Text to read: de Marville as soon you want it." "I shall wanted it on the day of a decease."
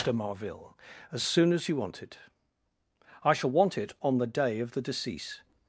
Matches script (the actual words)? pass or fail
fail